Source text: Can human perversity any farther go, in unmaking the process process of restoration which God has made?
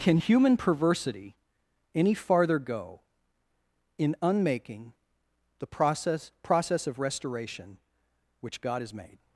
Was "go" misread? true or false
false